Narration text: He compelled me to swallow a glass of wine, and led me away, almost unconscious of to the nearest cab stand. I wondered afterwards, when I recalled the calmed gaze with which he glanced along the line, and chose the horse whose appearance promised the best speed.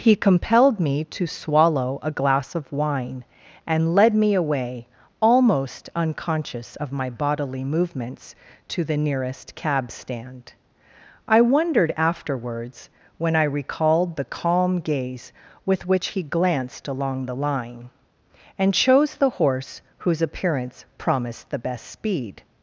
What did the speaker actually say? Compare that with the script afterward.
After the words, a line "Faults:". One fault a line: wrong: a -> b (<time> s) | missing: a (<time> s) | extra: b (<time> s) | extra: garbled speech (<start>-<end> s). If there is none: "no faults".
He compelled me to swallow a glass of wine, and led me away, almost unconscious of my bodily movements, to the nearest cab stand. I wondered afterwards, when I recalled the calm gaze with which he glanced along the line, and chose the horse whose appearance promised the best speed.
Faults:
extra: my bodily movements (6.9 s)
wrong: calmed -> calm (14.2 s)